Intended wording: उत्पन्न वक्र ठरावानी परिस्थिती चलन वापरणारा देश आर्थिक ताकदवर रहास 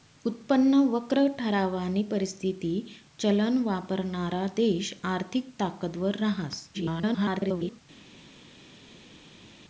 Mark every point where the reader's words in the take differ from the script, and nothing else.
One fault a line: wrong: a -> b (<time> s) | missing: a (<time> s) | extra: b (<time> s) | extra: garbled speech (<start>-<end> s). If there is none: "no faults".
extra: garbled speech (6.7-7.8 s)